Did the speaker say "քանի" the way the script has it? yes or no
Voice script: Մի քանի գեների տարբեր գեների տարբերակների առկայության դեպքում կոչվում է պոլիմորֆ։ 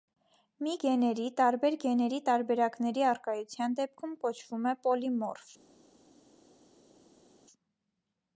no